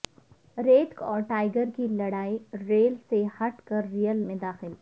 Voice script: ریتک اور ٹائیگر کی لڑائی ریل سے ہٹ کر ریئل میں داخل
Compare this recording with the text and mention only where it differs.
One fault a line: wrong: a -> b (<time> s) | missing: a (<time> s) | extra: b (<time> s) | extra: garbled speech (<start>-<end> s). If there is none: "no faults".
no faults